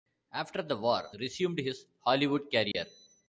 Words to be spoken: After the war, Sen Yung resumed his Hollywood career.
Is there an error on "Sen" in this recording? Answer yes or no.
yes